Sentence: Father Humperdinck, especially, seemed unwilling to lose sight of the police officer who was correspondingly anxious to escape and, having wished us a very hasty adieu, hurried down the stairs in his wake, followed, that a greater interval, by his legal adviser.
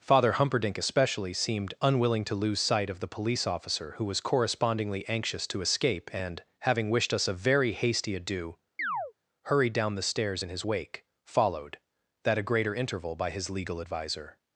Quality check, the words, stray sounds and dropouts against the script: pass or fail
fail